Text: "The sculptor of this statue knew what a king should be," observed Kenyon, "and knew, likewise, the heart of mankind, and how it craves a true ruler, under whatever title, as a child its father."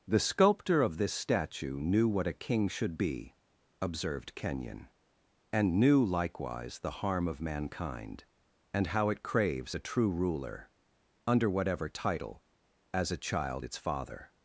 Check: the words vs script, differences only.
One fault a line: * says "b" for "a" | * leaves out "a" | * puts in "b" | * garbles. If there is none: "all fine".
* says "harm" for "heart"